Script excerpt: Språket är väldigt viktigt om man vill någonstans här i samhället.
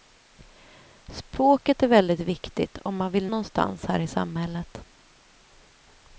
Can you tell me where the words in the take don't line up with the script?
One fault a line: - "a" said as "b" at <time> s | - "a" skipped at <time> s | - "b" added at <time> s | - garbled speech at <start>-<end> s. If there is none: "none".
none